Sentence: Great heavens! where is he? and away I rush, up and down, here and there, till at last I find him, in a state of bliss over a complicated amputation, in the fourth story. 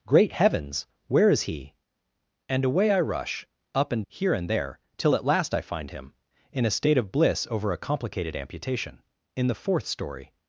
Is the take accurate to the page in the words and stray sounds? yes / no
no